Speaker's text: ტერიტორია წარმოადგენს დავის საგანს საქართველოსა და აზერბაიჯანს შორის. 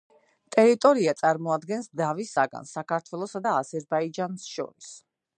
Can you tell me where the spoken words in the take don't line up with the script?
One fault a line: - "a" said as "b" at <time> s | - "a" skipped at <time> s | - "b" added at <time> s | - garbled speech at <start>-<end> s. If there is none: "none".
none